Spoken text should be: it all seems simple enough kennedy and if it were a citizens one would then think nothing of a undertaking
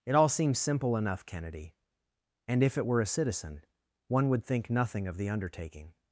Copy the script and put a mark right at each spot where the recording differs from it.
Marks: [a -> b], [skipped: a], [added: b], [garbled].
it all seems simple enough kennedy and if it were a [citizens -> citizen] one would [skipped: then] think nothing of [a -> the] undertaking